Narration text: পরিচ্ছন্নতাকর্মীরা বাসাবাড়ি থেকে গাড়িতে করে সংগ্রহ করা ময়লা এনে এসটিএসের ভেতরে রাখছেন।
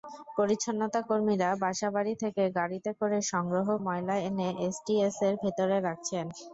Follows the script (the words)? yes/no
no